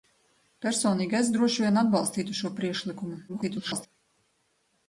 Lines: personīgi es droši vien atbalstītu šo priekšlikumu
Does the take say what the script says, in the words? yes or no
no